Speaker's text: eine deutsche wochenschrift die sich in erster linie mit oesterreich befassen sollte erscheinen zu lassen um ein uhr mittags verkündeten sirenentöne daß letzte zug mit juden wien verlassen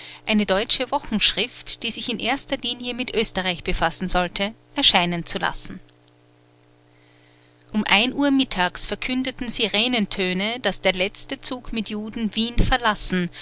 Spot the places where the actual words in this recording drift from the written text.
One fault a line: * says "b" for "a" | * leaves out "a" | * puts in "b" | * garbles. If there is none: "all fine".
* puts in "der"